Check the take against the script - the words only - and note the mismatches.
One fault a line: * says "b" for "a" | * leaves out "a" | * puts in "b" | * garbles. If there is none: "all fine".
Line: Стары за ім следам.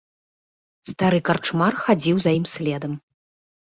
* puts in "карчмар хадзіў"